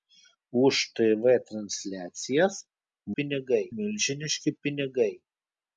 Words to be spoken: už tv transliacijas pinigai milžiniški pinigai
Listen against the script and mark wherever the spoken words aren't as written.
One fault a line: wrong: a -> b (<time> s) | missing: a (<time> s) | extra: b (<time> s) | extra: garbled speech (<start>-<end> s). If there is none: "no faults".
no faults